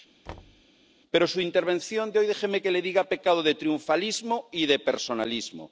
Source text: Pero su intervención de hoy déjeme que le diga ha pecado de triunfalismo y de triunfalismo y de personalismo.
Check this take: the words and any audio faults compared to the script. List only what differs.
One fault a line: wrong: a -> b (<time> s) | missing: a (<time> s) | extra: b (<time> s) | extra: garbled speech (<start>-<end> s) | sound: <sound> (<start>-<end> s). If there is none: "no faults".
sound: thud (0.3-0.6 s)
missing: triunfalismo y de (4.8 s)